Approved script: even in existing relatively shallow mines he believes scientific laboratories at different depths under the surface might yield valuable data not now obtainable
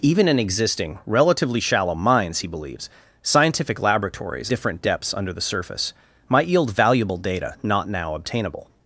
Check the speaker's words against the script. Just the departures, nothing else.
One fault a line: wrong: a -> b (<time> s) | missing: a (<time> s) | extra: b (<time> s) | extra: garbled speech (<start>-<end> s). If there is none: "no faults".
missing: at (4.5 s)